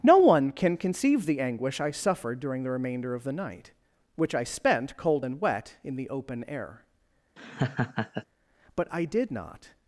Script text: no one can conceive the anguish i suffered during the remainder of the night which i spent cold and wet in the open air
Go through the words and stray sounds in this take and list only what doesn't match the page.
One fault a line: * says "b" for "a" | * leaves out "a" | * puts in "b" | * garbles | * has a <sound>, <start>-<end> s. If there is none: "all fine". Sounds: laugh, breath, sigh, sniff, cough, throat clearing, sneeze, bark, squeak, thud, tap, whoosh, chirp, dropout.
* has a laugh, 7.4-8.2 s
* puts in "but i did not"